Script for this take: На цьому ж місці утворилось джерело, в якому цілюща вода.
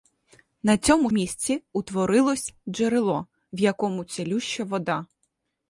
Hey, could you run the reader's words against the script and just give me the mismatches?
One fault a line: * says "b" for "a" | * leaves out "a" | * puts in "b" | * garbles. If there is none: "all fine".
* leaves out "ж"